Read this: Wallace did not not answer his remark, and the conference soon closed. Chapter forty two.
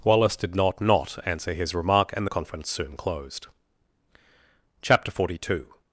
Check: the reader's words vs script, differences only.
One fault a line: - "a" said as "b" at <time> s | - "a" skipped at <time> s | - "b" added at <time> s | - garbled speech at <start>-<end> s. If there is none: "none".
none